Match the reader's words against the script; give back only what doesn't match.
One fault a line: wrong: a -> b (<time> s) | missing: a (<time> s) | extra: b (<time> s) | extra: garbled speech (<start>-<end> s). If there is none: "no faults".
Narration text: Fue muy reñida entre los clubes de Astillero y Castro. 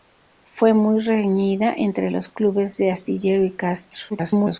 extra: garbled speech (4.1-4.6 s)